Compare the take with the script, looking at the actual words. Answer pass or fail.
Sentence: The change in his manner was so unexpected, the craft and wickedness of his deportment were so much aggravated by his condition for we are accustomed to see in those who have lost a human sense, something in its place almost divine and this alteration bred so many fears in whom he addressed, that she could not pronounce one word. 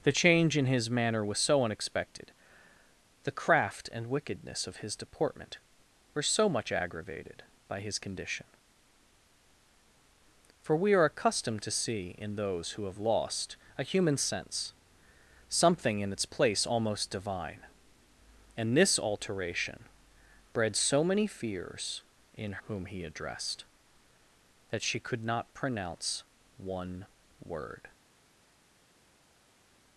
pass